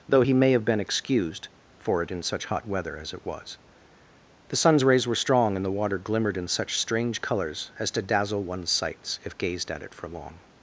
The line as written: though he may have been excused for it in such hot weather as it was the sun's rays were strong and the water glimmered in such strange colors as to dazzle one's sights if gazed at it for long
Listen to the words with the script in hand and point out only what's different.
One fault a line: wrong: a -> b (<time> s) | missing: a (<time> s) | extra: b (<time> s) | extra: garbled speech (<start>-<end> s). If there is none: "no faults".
no faults